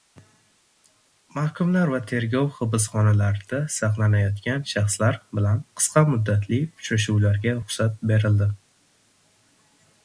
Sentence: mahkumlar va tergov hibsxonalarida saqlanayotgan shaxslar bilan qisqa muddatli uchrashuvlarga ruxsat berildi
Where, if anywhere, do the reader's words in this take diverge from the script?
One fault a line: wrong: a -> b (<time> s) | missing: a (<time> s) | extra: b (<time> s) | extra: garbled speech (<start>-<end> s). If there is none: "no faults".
no faults